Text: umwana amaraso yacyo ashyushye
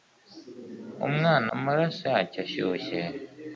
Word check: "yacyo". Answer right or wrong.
right